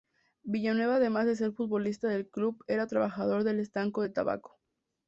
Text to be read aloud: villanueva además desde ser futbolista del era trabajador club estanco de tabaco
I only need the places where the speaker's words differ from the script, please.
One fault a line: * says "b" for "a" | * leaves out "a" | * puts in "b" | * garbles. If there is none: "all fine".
* says "de" for "desde"
* puts in "club"
* says "del" for "club"